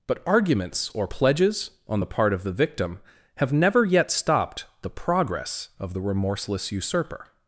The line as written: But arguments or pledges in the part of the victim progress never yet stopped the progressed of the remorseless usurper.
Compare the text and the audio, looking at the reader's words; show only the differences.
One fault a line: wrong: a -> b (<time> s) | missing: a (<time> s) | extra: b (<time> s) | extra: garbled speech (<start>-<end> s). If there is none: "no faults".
wrong: in -> on (1.9 s)
wrong: progress -> have (3.4 s)
wrong: progressed -> progress (4.9 s)